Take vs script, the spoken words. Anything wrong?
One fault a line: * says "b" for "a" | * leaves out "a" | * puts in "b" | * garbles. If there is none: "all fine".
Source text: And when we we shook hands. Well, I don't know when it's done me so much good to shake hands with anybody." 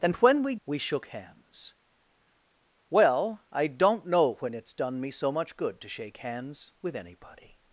all fine